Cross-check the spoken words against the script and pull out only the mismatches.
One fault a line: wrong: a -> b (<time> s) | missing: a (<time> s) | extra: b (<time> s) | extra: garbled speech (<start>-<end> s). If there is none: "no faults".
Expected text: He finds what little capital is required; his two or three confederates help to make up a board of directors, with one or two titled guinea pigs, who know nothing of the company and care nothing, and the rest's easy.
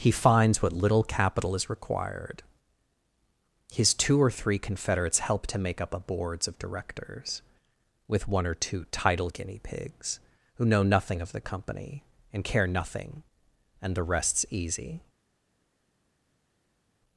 wrong: board -> boards (6.0 s)
wrong: titled -> title (8.8 s)